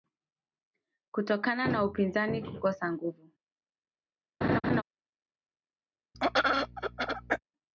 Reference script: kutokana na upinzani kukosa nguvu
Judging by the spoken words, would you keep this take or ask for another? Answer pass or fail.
pass